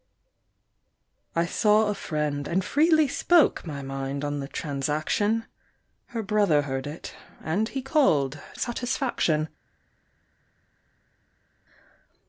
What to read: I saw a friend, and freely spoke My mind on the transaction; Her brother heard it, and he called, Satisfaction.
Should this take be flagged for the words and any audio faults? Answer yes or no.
no